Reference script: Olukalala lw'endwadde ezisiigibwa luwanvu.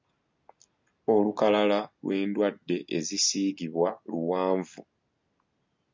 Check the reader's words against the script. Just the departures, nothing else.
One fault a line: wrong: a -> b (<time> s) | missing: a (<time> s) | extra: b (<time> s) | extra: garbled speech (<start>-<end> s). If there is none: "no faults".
no faults